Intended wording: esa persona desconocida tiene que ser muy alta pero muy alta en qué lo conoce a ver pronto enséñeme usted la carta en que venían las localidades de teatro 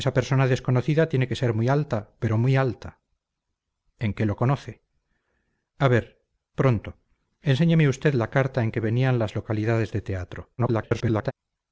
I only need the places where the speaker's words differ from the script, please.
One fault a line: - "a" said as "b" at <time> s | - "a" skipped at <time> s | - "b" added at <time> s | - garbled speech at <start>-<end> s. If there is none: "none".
- garbled speech at 10.6-11.3 s